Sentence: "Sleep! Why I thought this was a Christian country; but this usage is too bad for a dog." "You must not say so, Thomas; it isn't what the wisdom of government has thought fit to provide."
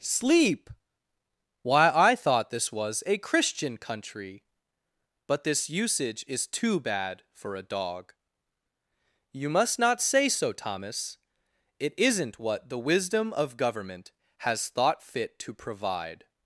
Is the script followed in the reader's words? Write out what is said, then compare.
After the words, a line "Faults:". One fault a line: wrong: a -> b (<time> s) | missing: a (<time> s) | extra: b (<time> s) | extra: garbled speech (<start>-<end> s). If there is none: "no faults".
"Sleep! Why I thought this was a Christian country; but this usage is too bad for a dog." "You must not say so, Thomas; it isn't what the wisdom of government has thought fit to provide."
Faults:
no faults